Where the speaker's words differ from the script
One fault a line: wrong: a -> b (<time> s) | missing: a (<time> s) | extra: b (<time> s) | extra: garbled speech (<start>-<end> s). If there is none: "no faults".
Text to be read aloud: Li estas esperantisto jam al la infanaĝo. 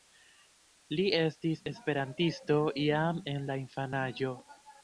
wrong: estas -> estis (1.2 s)
wrong: al -> en (3.4 s)